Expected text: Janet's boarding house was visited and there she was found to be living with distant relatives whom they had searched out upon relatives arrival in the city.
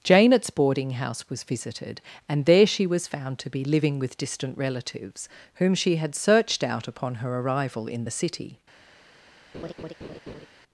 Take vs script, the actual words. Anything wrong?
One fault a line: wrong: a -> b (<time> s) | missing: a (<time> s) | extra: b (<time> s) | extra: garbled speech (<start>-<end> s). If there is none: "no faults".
wrong: they -> she (5.8 s)
wrong: relatives -> her (7.2 s)